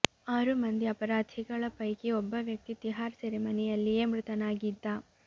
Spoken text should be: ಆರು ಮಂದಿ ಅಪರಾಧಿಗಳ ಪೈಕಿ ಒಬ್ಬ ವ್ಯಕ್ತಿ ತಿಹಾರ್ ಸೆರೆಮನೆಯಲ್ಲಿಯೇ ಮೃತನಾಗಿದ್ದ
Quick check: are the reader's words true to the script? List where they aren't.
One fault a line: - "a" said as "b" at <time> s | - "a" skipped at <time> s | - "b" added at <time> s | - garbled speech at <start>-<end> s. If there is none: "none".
none